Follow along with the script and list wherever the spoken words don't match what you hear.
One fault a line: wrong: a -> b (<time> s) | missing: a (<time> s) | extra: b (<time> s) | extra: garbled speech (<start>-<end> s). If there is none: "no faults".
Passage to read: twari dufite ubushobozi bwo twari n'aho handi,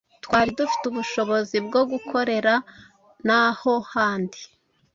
wrong: twari -> gukorera (1.9 s)